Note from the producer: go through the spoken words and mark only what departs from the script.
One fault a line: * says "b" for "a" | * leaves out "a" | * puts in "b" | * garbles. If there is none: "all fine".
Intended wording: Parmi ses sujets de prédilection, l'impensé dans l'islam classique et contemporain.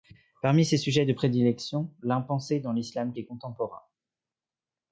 * leaves out "classique"